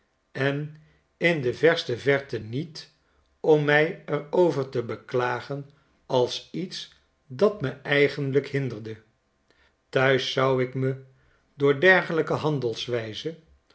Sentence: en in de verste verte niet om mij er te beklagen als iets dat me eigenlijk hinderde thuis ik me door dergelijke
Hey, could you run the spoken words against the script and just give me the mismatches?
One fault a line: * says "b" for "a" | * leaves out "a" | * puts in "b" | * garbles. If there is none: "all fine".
* puts in "over"
* puts in "zou"